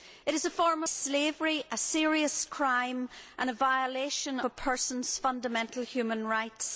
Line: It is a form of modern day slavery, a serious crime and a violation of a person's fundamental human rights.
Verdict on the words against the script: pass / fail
fail